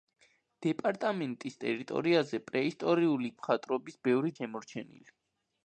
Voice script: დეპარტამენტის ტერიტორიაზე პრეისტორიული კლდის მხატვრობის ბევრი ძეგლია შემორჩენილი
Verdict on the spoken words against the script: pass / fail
fail